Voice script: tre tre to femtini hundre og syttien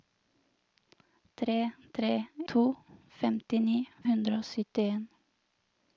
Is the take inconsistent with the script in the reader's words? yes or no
no